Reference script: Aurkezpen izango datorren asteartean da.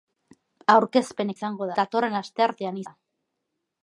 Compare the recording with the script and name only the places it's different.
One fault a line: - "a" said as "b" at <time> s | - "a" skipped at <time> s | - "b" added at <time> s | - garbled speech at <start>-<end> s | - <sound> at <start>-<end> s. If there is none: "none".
none